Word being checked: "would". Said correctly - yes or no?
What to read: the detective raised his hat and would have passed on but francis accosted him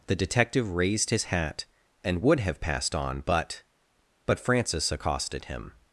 yes